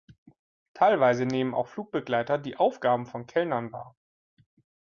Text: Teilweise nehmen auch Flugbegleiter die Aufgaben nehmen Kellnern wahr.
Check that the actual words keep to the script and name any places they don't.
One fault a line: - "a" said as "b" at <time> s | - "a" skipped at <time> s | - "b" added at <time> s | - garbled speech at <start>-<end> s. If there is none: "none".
- "nehmen" said as "von" at 3.0 s